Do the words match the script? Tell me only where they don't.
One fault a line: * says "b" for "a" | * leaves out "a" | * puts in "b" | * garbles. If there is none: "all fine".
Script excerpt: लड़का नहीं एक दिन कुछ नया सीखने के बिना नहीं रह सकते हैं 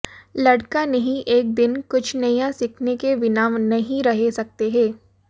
all fine